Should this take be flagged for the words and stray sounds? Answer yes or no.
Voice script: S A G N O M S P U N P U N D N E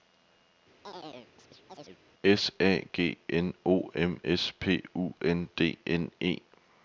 yes